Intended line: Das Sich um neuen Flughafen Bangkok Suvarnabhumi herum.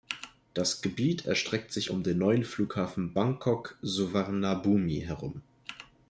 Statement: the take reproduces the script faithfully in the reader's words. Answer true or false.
false